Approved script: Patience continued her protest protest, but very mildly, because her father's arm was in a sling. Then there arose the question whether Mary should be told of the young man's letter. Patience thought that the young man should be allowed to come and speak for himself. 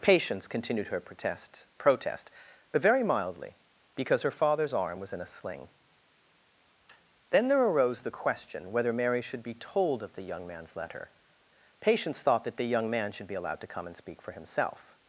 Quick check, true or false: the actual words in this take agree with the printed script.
true